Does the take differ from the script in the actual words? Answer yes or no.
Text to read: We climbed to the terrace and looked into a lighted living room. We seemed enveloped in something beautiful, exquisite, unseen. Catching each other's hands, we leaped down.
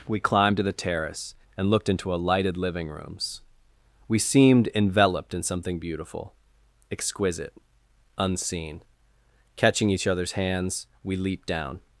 yes